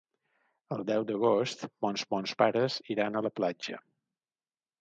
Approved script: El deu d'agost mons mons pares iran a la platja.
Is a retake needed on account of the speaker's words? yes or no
no